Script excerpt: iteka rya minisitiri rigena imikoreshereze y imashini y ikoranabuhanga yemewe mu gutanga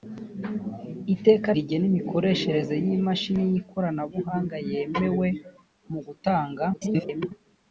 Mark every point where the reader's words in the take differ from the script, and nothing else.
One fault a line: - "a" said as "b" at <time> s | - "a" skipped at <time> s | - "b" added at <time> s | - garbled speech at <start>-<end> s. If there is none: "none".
- "rya minisitiri" skipped at 1.5 s
- garbled speech at 6.7-7.3 s